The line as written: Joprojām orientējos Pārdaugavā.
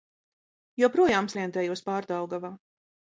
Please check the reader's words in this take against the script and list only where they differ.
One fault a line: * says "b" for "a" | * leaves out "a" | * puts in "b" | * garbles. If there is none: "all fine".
all fine